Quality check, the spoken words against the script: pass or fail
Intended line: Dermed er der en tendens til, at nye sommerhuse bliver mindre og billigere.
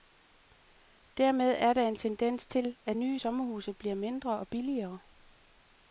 pass